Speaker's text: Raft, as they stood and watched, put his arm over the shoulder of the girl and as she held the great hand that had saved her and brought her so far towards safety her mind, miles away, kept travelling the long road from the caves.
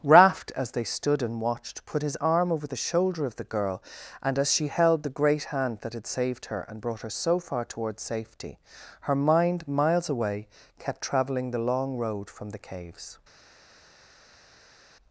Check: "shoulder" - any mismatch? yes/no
no